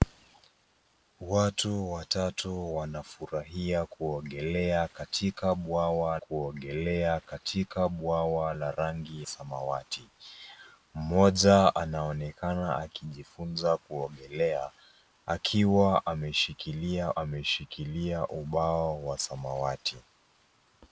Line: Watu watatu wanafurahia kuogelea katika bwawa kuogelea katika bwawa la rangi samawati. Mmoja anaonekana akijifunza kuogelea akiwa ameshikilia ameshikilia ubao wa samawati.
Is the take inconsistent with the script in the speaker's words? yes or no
no